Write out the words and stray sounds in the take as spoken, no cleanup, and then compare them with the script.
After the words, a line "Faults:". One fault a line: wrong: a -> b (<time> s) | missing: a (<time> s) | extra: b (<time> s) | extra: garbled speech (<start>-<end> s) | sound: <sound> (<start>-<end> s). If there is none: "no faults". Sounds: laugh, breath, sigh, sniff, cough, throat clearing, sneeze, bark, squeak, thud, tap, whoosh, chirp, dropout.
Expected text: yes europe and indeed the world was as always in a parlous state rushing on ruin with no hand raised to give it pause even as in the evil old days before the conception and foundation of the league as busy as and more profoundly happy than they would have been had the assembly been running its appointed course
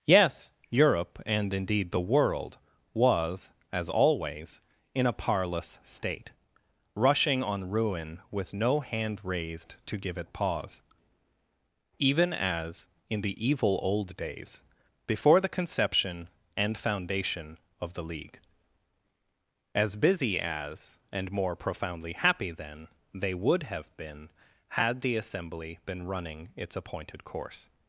yes europe and indeed the world was as always in a parlous state rushing on ruin with no hand raised to give it pause even as in the evil old days before the conception and foundation of the league as busy as and more profoundly happy than they would have been had the assembly been running its appointed course
Faults:
no faults